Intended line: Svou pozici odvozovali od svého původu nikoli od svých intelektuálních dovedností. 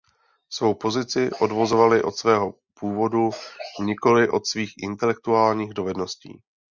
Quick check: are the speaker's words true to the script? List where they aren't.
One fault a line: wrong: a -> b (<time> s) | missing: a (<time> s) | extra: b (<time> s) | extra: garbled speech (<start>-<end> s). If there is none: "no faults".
no faults